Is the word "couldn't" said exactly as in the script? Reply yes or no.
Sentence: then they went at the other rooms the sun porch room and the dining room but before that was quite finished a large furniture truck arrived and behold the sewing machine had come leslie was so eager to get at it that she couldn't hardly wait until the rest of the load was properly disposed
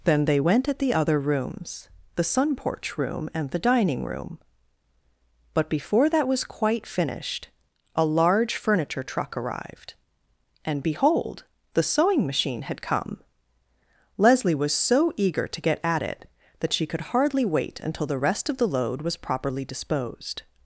no